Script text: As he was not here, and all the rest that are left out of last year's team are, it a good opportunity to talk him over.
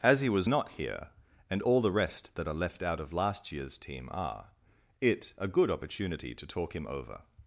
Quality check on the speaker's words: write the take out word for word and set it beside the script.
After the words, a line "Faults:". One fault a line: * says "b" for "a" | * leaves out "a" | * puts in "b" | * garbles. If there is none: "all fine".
As he was not here, and all the rest that are left out of last year's team are, it a good opportunity to talk him over.
Faults:
all fine